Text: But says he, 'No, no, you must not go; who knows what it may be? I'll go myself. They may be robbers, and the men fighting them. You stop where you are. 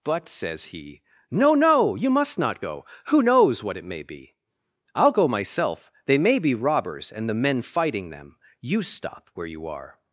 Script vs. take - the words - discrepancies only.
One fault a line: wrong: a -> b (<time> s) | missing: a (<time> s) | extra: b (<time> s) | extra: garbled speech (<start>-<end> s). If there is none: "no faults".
no faults